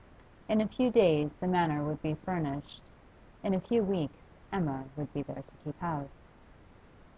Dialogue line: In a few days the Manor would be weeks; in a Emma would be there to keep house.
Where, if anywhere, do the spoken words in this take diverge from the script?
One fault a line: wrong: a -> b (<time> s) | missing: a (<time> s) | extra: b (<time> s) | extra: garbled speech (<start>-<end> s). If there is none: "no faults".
wrong: weeks -> furnished (2.1 s)
extra: few weeks (3.6 s)